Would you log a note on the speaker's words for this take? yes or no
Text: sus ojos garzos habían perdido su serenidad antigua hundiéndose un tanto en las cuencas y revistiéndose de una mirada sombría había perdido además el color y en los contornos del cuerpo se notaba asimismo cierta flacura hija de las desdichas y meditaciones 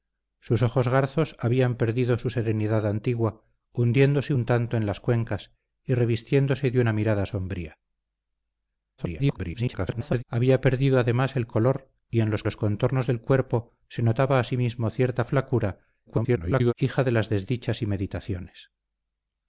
yes